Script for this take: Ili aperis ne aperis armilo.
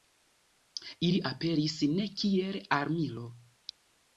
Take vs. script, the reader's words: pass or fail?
fail